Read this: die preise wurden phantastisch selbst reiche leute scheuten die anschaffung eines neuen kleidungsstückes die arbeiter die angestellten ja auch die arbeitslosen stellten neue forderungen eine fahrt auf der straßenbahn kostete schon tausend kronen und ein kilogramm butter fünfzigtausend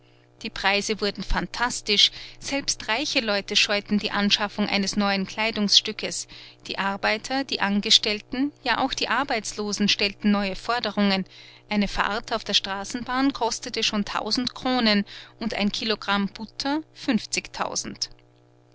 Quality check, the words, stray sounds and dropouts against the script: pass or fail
pass